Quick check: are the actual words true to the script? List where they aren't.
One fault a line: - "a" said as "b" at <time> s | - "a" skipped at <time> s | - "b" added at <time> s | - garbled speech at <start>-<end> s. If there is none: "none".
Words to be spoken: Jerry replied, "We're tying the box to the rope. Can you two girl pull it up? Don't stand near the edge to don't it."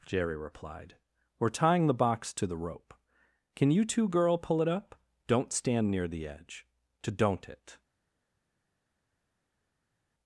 none